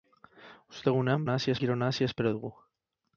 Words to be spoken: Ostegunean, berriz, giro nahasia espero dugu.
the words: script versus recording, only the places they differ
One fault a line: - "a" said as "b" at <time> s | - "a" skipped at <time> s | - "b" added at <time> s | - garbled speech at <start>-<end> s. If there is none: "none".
- "berriz" said as "nahasia" at 1.3 s